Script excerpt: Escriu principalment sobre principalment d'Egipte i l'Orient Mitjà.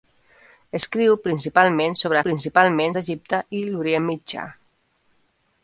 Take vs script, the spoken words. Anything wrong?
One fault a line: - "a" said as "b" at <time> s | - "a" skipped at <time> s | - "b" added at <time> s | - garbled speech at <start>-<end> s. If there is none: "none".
none